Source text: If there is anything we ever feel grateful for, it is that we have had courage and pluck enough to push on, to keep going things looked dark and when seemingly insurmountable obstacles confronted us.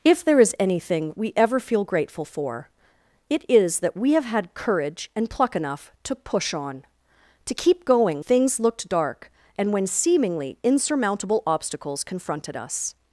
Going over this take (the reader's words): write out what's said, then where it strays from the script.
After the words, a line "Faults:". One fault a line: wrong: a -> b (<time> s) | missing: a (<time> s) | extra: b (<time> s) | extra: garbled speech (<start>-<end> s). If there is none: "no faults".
If there is anything we ever feel grateful for, it is that we have had courage and pluck enough to push on, to keep going things looked dark and when seemingly insurmountable obstacles confronted us.
Faults:
no faults